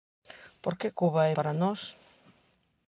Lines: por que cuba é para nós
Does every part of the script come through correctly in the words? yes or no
yes